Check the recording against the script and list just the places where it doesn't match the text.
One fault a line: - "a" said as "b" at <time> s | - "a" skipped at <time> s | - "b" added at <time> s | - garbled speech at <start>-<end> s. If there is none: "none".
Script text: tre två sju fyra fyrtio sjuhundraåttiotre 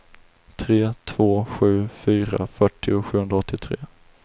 none